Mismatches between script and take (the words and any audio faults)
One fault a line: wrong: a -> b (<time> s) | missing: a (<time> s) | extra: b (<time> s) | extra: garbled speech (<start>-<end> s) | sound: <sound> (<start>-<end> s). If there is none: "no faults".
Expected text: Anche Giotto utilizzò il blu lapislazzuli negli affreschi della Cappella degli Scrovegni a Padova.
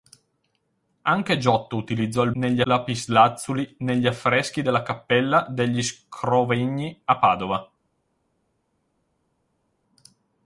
wrong: blu -> negli (2.4 s)